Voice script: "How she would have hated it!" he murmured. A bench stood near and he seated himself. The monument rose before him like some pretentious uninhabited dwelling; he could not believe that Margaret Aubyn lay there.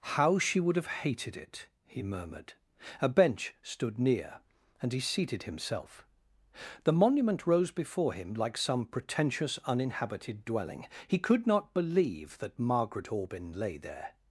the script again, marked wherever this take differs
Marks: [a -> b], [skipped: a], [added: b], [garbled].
"How she would have hated it!" he murmured. A bench stood near and he seated himself. The monument rose before him like some pretentious uninhabited dwelling; he could not believe that Margaret Aubyn lay there.